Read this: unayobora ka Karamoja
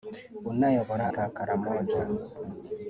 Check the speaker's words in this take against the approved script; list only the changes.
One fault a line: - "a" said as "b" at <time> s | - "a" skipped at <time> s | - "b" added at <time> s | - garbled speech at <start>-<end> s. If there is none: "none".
none